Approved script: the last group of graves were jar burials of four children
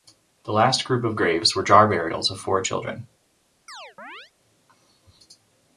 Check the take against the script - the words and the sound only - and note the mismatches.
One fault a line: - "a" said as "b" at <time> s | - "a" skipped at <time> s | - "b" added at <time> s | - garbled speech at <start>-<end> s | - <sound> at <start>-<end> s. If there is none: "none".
- chirp at 3.7-4.3 s